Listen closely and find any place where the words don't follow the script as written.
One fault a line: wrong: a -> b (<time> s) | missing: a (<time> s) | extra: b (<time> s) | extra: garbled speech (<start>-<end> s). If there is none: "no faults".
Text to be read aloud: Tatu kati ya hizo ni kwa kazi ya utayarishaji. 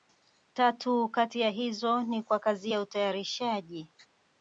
no faults